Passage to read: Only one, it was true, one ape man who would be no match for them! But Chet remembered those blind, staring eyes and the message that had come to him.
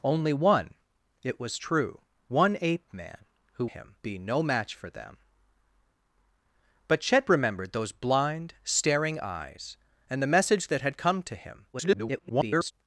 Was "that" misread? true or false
false